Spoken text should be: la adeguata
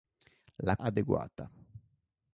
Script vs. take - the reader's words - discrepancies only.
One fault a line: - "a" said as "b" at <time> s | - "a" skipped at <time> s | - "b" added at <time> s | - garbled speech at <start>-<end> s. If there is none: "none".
none